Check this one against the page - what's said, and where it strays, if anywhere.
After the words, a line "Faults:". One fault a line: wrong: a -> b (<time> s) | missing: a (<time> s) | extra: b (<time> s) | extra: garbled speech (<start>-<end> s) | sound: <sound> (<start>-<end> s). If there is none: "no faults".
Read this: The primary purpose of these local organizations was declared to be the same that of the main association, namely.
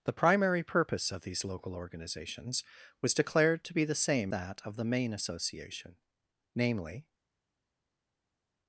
The primary purpose of these local organizations was declared to be the same that of the main association, namely.
Faults:
no faults